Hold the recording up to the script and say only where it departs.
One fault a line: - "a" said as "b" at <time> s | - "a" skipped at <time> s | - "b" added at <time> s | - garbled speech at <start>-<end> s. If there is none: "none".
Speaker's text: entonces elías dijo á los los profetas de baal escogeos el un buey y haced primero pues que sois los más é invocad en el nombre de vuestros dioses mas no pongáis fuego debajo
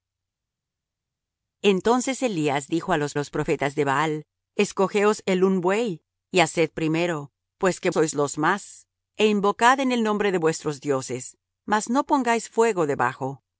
none